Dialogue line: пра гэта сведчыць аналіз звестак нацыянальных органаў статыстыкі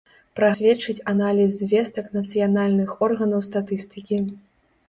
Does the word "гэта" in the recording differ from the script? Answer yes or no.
yes